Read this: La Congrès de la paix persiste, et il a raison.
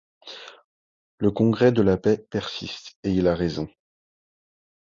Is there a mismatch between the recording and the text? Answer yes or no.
yes